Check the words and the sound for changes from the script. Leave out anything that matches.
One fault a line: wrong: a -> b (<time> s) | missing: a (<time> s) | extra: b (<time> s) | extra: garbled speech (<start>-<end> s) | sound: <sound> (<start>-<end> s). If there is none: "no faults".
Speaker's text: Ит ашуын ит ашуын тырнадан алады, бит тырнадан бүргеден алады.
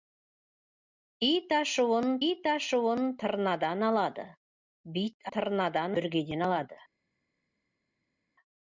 no faults